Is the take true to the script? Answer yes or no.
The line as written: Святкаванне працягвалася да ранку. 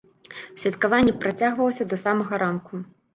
no